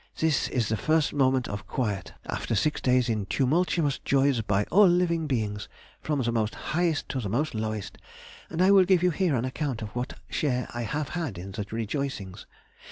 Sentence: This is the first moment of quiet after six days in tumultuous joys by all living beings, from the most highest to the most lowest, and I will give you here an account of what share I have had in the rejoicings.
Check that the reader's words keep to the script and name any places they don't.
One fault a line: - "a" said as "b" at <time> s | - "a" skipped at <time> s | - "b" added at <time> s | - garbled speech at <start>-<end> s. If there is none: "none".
none